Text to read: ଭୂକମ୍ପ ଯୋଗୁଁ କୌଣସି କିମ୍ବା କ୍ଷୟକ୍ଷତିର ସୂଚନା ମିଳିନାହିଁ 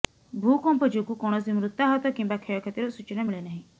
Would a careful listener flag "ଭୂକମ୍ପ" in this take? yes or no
no